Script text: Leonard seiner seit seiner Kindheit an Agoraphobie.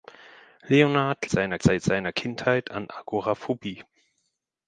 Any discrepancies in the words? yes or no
no